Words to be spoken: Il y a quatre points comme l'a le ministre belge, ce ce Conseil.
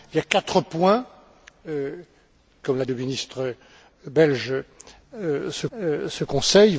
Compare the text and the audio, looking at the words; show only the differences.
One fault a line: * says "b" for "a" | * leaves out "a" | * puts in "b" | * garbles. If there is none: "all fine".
all fine